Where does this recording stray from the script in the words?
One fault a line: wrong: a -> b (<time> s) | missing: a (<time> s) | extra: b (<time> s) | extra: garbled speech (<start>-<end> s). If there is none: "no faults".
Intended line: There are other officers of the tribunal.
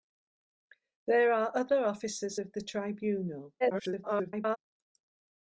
extra: garbled speech (3.6-4.6 s)